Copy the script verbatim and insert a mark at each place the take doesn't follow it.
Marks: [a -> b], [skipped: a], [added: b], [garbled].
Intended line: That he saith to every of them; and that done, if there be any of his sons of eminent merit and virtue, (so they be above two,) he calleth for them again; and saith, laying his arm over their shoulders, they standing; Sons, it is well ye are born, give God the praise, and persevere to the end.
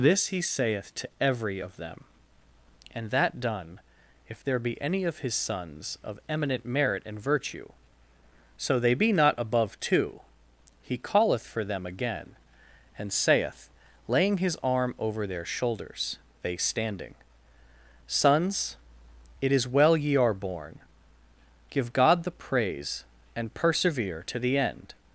[That -> This] he saith to every of them; and that done, if there be any of his sons of eminent merit and virtue, (so they be [added: not] above two,) he calleth for them again; and saith, laying his arm over their shoulders, they standing; Sons, it is well ye are born, give God the praise, and persevere to the end.